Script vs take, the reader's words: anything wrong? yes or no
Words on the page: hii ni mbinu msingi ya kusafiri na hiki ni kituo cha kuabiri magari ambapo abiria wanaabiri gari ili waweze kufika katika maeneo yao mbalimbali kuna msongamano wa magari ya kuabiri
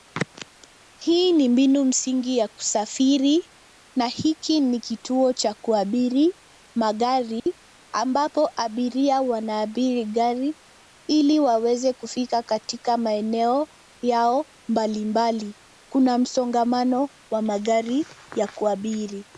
no